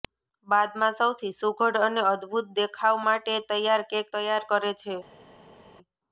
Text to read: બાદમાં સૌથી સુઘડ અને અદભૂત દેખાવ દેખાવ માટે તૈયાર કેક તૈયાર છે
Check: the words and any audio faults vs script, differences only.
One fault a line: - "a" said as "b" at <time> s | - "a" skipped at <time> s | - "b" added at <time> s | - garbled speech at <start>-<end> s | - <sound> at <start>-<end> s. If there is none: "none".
- "દેખાવ" skipped at 3.0 s
- "કરે" added at 4.5 s